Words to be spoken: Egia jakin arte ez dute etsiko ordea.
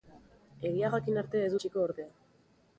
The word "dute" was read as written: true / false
false